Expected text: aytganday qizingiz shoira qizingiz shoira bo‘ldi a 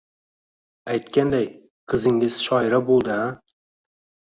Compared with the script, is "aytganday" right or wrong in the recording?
right